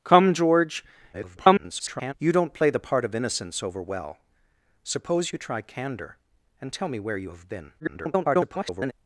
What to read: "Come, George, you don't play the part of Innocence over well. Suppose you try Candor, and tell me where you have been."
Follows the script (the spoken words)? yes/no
no